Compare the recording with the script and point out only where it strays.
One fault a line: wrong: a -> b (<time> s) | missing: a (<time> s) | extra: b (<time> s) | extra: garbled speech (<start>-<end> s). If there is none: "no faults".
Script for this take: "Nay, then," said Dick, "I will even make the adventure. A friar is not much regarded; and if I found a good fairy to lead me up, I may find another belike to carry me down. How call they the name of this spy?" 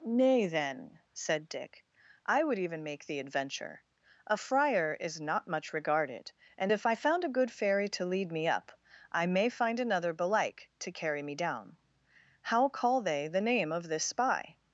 wrong: will -> would (2.4 s)